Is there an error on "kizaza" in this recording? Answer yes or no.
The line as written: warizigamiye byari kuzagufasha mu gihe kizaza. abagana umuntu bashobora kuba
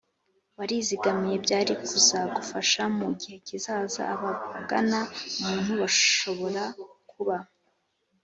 no